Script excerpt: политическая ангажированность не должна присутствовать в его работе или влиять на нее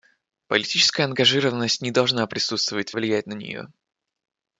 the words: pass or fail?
fail